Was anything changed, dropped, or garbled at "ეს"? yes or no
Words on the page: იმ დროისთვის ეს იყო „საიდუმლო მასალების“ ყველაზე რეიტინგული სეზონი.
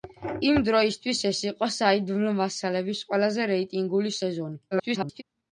no